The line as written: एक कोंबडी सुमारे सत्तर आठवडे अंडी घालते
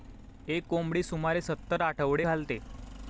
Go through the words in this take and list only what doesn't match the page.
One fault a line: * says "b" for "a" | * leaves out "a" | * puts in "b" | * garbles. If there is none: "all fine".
* leaves out "अंडी"